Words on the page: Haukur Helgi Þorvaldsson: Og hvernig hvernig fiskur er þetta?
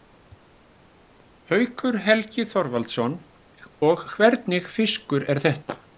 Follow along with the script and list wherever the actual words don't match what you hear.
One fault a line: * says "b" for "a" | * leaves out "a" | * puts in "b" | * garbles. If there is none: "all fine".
* leaves out "hvernig"